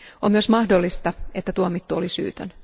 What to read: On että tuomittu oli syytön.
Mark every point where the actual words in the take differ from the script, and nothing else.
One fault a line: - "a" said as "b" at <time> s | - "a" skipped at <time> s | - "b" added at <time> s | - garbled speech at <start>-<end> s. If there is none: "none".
- "myös mahdollista" added at 0.3 s